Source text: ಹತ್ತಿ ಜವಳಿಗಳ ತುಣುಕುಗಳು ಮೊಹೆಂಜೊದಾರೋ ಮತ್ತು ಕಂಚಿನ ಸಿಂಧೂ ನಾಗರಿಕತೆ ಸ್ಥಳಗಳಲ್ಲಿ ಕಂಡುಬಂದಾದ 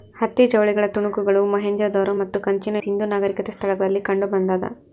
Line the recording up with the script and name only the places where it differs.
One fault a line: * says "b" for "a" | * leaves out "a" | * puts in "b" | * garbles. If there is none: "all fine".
all fine